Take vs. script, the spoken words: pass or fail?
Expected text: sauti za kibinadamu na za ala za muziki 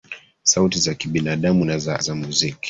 fail